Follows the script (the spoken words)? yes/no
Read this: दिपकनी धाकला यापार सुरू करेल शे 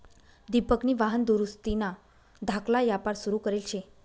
no